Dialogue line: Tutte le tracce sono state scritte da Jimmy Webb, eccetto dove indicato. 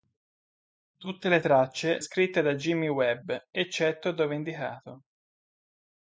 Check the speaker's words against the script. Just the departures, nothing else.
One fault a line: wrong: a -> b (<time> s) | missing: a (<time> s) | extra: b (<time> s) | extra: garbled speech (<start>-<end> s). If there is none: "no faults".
missing: sono state (2.0 s)